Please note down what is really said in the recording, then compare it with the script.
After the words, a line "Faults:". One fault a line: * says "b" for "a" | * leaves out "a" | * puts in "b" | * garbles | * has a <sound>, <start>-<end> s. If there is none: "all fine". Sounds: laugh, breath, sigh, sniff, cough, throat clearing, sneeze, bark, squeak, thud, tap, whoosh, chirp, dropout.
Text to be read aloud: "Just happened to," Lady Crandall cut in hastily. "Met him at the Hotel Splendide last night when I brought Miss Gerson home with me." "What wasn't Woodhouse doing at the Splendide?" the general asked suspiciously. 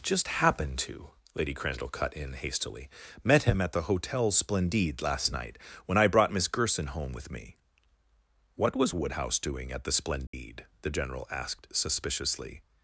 "Just happened to," Lady Crandall cut in hastily. "Met him at the Hotel Splendide last night when I brought Miss Gerson home with me." "What was Woodhouse doing at the Splendide?" the general asked suspiciously.
Faults:
* says "was" for "wasn't"
* has a dropout, 10.3-10.3 s